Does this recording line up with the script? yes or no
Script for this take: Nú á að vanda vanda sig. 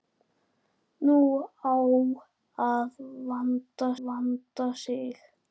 yes